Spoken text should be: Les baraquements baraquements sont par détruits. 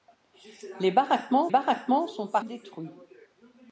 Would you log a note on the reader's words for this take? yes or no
no